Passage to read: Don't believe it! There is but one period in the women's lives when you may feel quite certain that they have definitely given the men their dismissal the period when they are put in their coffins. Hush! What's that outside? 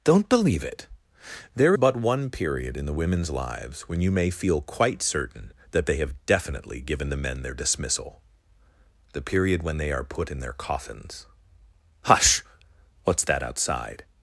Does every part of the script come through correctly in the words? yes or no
no